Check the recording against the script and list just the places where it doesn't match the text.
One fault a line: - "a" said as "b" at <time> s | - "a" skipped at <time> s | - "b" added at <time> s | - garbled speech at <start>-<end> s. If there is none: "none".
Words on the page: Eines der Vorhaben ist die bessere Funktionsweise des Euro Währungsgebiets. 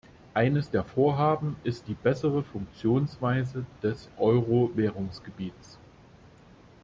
none